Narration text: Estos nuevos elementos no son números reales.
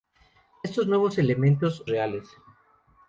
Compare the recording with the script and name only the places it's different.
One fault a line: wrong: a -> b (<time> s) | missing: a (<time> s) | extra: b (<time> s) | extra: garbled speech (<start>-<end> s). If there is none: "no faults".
missing: no son números (1.9 s)